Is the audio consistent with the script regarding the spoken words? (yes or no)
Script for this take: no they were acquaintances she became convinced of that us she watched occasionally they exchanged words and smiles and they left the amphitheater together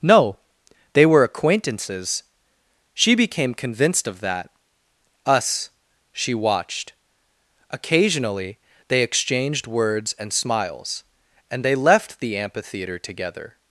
yes